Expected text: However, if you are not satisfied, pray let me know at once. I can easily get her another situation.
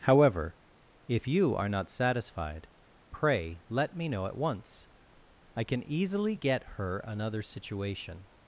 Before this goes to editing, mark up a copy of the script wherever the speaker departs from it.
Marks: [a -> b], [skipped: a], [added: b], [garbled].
However, if you are not satisfied, pray let me know at once. I can easily get her another situation.